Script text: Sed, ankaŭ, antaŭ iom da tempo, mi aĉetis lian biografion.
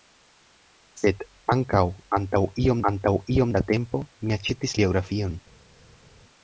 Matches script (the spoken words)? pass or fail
fail